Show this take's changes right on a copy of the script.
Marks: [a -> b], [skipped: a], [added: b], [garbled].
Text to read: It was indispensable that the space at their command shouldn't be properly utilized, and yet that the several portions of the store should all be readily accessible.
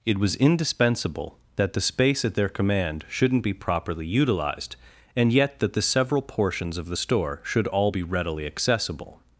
It was indispensable that the space at their command shouldn't be properly utilized, and yet that the several portions of the store should all be readily accessible.